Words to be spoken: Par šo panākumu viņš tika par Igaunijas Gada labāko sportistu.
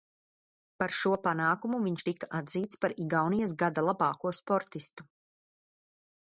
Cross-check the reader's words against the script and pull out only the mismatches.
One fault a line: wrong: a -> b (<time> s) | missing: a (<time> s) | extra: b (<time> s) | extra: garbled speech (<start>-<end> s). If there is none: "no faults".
extra: atzīts (2.4 s)